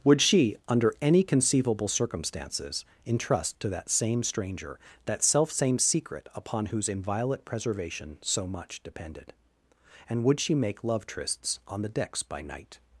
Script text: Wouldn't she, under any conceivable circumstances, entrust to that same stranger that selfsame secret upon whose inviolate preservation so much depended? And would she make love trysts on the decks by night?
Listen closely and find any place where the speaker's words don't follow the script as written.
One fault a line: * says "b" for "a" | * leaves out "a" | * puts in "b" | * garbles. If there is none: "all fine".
* says "Would" for "Wouldn't"